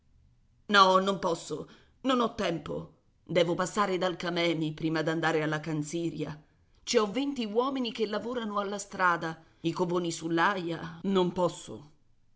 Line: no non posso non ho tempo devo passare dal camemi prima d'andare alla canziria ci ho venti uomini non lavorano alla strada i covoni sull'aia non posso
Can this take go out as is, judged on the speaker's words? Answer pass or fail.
fail